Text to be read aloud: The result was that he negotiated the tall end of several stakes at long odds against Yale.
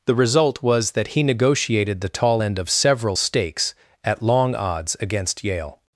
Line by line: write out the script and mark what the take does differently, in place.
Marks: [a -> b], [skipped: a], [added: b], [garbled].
The result was that he negotiated the tall end of several stakes at long odds against Yale.